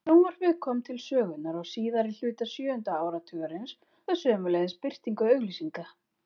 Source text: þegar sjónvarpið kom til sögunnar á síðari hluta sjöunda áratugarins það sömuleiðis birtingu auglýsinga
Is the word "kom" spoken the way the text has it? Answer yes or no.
yes